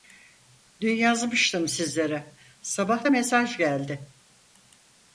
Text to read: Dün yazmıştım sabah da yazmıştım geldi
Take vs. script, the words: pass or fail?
fail